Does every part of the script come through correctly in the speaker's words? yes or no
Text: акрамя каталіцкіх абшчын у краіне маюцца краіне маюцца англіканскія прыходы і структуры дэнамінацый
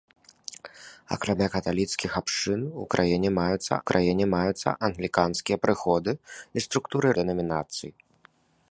yes